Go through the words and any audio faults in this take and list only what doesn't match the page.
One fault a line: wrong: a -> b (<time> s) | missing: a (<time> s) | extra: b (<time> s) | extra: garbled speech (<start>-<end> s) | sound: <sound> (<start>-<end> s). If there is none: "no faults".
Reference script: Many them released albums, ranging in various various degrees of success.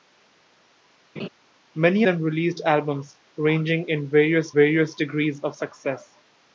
sound: laugh (1.2-1.3 s)